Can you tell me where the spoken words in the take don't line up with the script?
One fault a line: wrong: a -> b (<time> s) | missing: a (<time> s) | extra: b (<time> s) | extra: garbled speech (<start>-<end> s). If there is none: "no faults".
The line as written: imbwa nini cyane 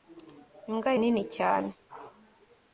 no faults